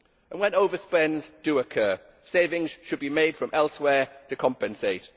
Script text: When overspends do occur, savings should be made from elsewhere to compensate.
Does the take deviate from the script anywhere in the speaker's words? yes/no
no